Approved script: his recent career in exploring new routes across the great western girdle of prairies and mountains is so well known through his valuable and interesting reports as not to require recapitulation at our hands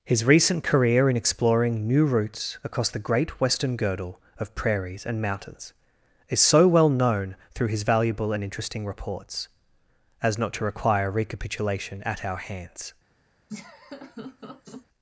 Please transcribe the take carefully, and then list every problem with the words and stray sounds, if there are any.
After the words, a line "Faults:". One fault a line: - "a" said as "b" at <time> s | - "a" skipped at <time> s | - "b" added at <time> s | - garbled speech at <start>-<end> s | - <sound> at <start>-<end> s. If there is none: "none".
his recent career in exploring new routes across the great western girdle of prairies and mountains is so well known through his valuable and interesting reports as not to require recapitulation at our hands
Faults:
- laugh at 13.5-14.9 s